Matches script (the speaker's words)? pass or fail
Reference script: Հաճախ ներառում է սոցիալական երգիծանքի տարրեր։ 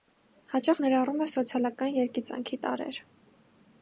pass